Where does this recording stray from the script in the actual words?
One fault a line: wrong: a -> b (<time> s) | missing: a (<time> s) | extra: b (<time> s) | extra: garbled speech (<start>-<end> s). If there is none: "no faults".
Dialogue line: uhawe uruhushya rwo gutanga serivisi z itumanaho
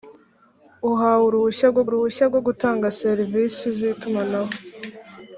extra: uruhushya rwo (1.9 s)